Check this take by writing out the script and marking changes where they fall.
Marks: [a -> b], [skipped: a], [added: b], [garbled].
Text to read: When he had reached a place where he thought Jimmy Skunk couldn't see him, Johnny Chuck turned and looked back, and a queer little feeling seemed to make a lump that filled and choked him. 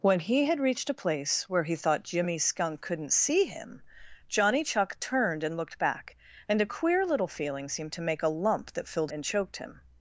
When he had reached a place where he thought Jimmy Skunk couldn't see him, Johnny Chuck turned and looked back, and a queer little feeling seemed to make a lump that filled and choked him.